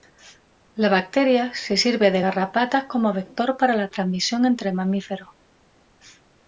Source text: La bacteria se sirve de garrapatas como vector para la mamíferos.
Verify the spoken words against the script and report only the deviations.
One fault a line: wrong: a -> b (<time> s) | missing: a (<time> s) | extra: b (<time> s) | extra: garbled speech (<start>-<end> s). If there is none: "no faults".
extra: transmisión entre (3.9 s)